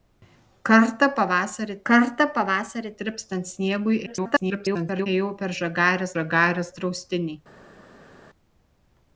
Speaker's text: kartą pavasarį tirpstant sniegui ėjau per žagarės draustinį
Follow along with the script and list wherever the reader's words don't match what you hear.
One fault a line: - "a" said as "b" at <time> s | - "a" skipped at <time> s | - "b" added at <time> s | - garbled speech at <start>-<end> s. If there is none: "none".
- "kartą pavasarį" added at 1.9 s
- garbled speech at 4.1-5.1 s
- "žagarės" added at 6.2 s